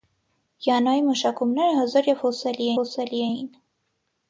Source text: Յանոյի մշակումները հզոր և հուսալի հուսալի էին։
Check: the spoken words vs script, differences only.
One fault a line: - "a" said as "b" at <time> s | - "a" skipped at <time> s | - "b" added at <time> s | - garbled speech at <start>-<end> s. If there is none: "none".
none